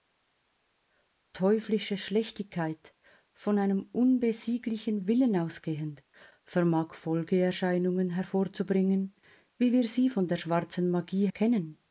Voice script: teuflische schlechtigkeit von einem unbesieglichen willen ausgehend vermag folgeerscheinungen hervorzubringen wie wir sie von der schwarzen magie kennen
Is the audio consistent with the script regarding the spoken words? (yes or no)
yes